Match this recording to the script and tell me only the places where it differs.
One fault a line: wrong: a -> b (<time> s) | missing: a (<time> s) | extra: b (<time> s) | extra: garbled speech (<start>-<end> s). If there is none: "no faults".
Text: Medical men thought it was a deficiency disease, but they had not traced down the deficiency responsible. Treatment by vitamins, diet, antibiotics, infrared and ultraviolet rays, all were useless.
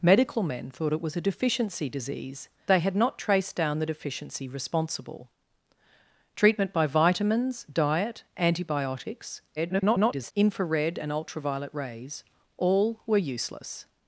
missing: but (2.5 s)
extra: garbled speech (9.6-10.3 s)